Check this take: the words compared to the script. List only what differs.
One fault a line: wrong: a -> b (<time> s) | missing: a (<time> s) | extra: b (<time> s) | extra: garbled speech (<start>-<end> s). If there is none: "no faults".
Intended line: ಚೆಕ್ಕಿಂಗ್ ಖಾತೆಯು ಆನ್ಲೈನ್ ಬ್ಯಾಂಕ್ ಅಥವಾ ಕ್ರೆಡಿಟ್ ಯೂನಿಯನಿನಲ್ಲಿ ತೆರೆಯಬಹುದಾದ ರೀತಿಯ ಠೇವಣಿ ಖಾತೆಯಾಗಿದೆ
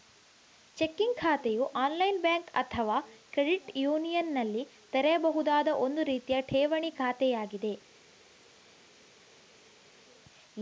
extra: ಒಂದು (5.8 s)